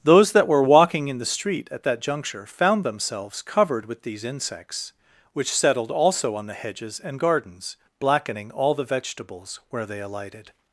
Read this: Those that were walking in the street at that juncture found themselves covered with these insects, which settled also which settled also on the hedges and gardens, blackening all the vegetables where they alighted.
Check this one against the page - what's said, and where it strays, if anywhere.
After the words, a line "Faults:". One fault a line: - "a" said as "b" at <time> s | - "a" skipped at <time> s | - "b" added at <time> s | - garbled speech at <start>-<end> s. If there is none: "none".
Those that were walking in the street at that juncture found themselves covered with these insects, which settled also on the hedges and gardens, blackening all the vegetables where they alighted.
Faults:
- "which settled also" skipped at 6.4 s